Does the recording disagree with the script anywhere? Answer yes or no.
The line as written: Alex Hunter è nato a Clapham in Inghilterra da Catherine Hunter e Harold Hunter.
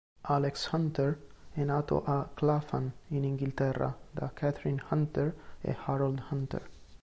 no